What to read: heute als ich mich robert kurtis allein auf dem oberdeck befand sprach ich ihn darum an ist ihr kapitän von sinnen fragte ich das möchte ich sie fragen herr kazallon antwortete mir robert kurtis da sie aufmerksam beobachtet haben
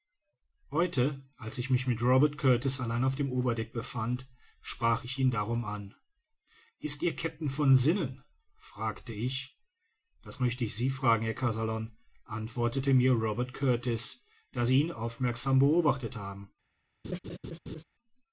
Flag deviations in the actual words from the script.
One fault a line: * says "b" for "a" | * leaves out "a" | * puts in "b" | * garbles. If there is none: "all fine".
* puts in "mit"
* puts in "ihn"